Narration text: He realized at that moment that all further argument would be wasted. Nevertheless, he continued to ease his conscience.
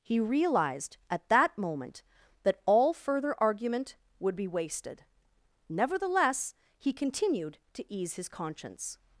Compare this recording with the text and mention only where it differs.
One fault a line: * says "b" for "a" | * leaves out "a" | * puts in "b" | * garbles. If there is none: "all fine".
all fine